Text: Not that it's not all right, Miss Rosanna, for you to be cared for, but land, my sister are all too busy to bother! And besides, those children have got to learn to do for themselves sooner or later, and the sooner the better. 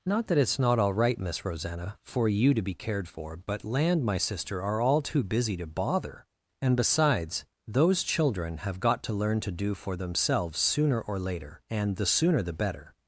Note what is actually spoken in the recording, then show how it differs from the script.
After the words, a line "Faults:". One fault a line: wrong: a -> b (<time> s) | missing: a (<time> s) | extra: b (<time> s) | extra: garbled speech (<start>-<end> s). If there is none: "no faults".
Not that it's not all right, Miss Rosanna, for you to be cared for, but land, my sister are all too busy to bother! And besides, those children have got to learn to do for themselves sooner or later, and the sooner the better.
Faults:
no faults